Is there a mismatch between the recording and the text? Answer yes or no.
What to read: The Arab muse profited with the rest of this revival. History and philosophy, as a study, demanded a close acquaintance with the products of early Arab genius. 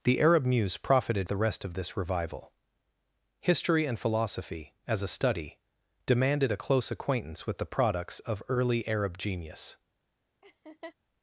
yes